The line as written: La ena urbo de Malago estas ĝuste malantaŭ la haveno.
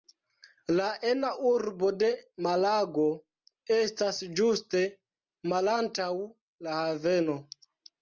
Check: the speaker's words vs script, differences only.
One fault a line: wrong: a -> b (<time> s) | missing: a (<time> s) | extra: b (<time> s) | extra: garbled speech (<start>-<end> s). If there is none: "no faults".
no faults